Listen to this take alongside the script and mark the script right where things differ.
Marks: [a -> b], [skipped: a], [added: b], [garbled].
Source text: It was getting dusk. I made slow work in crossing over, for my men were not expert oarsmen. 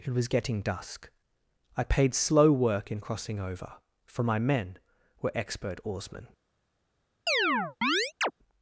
It was getting dusk. I [made -> paid] slow work in crossing over, for my men were [skipped: not] expert oarsmen.